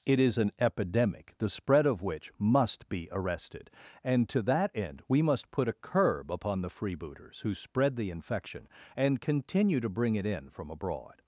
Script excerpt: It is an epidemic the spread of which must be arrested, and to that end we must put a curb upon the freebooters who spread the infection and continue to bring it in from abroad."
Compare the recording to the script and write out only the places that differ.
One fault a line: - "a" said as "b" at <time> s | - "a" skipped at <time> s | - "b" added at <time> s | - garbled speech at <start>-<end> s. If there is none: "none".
none